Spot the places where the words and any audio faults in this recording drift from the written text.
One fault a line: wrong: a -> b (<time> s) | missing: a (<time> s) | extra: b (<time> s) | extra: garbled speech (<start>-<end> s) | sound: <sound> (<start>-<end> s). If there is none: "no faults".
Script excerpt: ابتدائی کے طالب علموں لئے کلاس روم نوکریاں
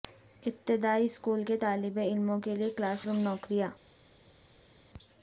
extra: اسکول (1.1 s)
extra: کے (2.4 s)